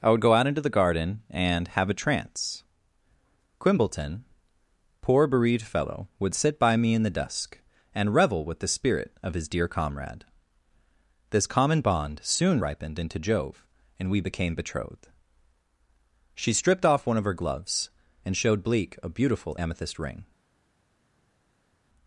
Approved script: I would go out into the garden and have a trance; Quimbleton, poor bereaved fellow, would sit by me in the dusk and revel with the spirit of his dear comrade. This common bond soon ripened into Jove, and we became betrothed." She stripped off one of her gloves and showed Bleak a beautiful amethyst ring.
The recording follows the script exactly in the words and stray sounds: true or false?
true